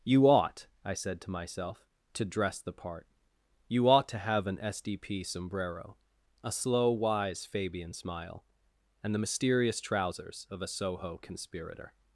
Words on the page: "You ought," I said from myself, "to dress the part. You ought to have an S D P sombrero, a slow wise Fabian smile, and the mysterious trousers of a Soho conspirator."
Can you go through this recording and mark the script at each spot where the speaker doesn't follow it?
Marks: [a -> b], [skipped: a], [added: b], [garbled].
"You ought," I said [from -> to] myself, "to dress the part. You ought to have an S D P sombrero, a slow wise Fabian smile, and the mysterious trousers of a Soho conspirator."